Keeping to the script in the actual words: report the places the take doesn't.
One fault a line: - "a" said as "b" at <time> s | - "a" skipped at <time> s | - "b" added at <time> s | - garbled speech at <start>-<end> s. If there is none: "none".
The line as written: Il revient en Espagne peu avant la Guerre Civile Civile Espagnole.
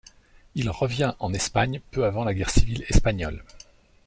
- "Civile" skipped at 2.9 s